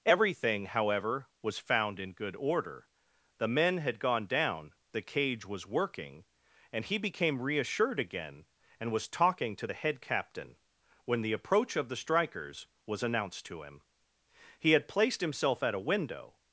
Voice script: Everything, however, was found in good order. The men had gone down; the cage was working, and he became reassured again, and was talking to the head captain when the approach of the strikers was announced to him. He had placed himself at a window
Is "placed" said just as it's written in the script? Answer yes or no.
yes